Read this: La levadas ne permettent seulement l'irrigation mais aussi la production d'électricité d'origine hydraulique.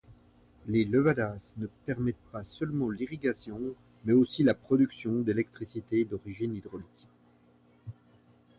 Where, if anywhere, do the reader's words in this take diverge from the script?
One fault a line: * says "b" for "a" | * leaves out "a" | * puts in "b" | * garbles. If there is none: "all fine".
* says "Les" for "La"
* puts in "pas"